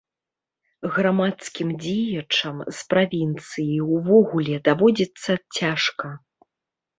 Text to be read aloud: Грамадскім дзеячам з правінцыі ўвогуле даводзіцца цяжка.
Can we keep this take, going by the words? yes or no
yes